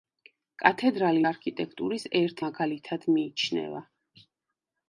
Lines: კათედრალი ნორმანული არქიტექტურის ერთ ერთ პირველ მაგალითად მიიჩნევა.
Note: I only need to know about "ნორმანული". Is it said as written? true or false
false